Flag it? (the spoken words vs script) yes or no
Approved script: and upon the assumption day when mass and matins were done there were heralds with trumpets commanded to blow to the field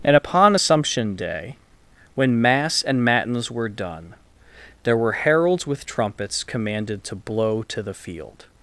yes